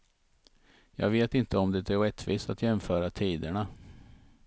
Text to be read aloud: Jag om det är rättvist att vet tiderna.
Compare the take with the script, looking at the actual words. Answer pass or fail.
fail